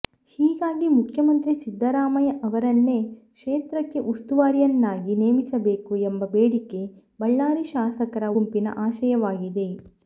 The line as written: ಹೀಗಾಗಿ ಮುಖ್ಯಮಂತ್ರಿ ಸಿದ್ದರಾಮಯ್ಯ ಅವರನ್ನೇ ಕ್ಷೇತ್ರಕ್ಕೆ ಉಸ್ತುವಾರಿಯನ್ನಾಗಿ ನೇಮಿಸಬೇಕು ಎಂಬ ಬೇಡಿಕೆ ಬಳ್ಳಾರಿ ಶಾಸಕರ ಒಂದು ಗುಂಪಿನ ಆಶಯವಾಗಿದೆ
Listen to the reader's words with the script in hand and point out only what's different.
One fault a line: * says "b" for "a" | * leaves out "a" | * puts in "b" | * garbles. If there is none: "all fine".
* leaves out "ಒಂದು"